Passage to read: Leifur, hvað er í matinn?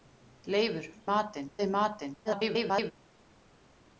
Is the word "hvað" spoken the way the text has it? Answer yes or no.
no